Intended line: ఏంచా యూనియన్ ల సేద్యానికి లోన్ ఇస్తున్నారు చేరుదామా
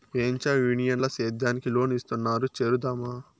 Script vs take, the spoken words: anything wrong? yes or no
no